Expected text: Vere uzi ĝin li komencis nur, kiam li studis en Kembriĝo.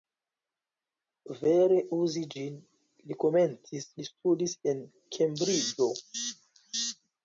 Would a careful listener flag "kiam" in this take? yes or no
yes